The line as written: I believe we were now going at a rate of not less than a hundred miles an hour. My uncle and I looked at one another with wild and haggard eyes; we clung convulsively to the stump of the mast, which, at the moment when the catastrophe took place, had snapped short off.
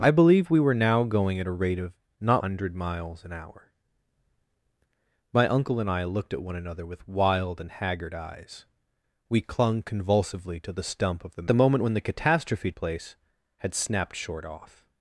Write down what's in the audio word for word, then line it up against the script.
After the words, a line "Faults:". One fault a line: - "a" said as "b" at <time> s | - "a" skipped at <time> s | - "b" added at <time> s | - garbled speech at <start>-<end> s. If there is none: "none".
I believe we were now going at a rate of not hundred miles an hour. My uncle and I looked at one another with wild and haggard eyes; we clung convulsively to the stump of the the moment when the catastrophe place, had snapped short off.
Faults:
- "less than a" skipped at 2.4 s
- "mast which at" skipped at 11.5 s
- "took" skipped at 12.7 s